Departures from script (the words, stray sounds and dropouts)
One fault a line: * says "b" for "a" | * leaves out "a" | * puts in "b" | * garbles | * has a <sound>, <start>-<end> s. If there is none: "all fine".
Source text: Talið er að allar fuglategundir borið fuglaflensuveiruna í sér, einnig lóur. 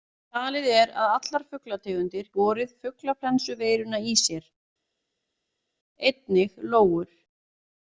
all fine